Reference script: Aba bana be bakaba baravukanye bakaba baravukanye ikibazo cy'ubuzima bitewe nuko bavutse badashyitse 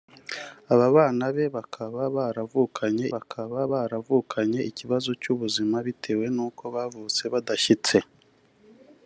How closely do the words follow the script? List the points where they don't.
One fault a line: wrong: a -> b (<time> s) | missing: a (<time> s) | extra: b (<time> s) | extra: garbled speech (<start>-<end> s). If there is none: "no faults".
no faults